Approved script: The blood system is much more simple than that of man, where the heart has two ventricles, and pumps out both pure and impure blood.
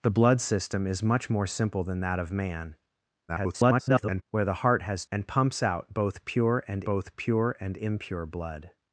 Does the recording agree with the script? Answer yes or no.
no